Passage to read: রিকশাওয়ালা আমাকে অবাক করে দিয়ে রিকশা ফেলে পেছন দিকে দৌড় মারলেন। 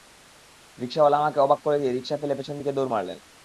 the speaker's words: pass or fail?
pass